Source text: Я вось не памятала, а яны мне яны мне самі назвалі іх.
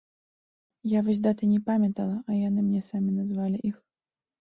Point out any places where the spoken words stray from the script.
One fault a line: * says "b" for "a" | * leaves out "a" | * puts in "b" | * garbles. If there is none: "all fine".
* puts in "даты"
* leaves out "яны мне"